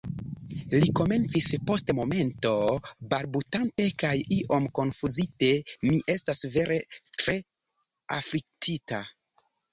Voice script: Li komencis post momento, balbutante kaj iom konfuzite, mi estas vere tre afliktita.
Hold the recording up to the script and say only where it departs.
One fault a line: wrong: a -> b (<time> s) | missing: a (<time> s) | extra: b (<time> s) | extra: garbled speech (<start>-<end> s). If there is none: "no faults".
no faults